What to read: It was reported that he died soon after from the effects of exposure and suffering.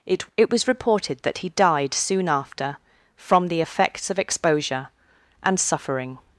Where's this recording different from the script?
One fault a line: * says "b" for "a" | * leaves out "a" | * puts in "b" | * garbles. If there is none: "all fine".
* puts in "it"